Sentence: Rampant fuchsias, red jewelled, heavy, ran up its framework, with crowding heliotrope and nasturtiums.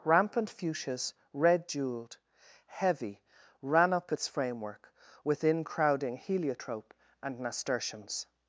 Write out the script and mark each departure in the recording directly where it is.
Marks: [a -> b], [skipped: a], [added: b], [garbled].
Rampant fuchsias, red jewelled, heavy, ran up its framework, [with -> within] crowding heliotrope and nasturtiums.